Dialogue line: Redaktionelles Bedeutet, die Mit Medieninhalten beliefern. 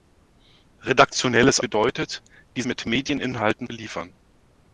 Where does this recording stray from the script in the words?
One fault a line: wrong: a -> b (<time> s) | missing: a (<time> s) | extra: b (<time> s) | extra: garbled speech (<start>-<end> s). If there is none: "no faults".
no faults